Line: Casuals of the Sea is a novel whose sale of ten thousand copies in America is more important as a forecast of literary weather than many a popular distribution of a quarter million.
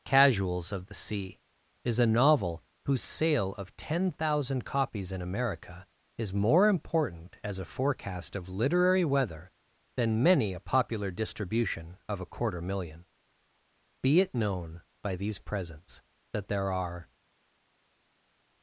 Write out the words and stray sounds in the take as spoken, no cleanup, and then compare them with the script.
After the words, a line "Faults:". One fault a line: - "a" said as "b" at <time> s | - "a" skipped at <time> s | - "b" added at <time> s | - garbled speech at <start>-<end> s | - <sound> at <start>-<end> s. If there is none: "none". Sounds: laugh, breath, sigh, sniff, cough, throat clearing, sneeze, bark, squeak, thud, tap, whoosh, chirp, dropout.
Casuals of the Sea is a novel whose sale of ten thousand copies in America is more important as a forecast of literary weather than many a popular distribution of a quarter million. Be it known by these presents that there are
Faults:
- "Be it known by these presents that there are" added at 14.0 s